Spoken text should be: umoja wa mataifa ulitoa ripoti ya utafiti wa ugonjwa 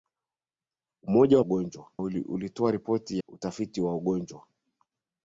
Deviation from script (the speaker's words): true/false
true